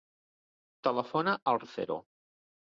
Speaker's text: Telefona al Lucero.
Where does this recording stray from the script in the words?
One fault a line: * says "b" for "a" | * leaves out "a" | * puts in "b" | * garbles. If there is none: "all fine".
all fine